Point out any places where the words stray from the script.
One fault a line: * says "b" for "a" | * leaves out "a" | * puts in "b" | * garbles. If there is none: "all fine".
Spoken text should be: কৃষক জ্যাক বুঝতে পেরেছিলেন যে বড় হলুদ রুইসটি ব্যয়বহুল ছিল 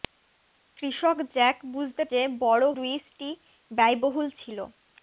* leaves out "পেরেছিলেন"
* leaves out "হলুদ"